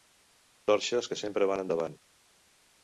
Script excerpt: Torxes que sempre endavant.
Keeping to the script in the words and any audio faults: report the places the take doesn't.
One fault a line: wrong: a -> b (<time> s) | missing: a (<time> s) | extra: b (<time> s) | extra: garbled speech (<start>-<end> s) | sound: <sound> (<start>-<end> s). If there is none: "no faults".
extra: van (1.5 s)